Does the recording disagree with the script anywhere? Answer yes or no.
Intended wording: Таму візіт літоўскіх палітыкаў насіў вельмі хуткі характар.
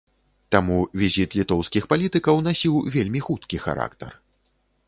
no